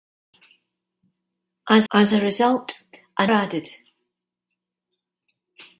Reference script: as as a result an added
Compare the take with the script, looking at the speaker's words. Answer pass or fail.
pass